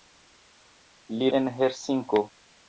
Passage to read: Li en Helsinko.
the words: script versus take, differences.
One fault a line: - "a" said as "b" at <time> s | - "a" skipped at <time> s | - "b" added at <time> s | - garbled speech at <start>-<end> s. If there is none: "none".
none